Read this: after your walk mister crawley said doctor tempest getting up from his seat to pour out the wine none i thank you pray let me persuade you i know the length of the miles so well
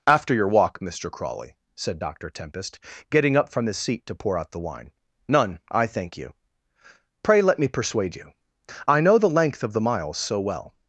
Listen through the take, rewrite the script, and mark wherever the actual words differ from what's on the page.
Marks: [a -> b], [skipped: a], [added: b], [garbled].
after your walk mister crawley said doctor tempest getting up from his seat to pour out the wine none i thank you pray let me persuade you i know the length of the miles so well